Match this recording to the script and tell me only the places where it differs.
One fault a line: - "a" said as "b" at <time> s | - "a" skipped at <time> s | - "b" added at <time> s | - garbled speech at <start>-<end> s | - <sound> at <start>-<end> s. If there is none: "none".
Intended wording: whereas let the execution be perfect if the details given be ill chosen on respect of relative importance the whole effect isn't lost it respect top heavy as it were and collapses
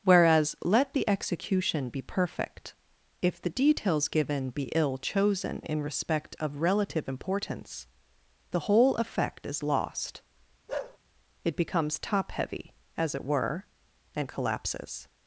- "on" said as "in" at 5.7 s
- "isn't" said as "is" at 9.5 s
- bark at 10.7-11.0 s
- "respect" said as "becomes" at 11.6 s